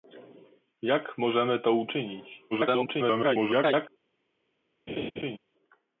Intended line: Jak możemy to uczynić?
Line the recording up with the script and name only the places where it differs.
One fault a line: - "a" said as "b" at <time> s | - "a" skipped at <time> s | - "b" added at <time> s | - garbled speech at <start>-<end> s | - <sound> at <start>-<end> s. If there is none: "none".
- garbled speech at 2.5-3.9 s
- laugh at 4.9-5.4 s